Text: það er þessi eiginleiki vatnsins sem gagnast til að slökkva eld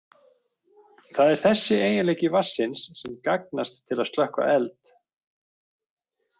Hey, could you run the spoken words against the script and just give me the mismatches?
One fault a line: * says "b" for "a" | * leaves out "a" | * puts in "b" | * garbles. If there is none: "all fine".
all fine